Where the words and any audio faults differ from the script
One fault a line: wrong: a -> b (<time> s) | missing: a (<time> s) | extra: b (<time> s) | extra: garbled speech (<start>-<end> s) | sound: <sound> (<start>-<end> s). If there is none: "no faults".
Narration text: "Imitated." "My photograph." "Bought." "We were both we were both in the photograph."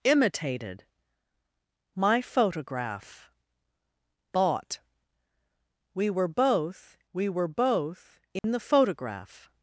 sound: dropout (8.4-8.4 s)